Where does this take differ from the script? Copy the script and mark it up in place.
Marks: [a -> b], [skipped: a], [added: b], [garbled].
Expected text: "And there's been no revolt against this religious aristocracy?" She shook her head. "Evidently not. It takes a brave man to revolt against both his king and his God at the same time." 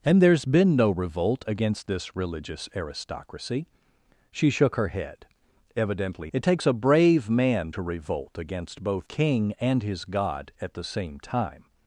"And there's been no revolt against this religious aristocracy?" She shook her head. "Evidently [skipped: not.] It takes a brave man to revolt against both [skipped: his] king and his God at the same time."